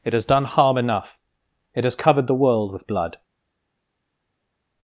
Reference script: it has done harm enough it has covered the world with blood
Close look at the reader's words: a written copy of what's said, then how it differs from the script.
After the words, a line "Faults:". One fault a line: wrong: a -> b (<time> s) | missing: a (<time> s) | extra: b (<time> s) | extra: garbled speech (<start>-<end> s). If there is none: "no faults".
it has done harm enough it has covered the world with blood
Faults:
no faults